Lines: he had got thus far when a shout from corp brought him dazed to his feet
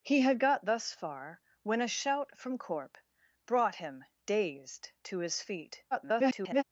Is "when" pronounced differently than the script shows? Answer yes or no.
no